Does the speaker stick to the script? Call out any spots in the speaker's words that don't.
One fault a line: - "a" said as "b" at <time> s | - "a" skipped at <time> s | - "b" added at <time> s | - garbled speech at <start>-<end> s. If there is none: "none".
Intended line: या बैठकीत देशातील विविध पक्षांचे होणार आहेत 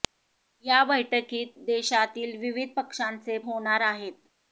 none